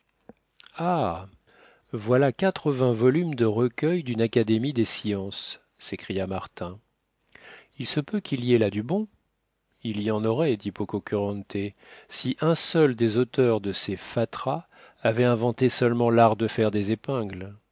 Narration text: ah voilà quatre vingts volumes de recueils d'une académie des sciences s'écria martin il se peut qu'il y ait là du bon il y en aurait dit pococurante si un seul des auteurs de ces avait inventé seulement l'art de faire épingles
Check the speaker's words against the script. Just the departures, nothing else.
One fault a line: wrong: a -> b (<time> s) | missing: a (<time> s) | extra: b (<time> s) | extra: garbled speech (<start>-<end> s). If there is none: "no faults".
extra: fatras (14.0 s)
extra: des (16.7 s)